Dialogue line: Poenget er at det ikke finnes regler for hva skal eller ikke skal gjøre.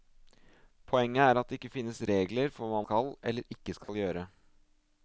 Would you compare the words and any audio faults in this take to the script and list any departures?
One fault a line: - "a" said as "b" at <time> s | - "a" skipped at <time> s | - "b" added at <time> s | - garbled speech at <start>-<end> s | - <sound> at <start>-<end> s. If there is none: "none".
- dropout at 3.8-3.9 s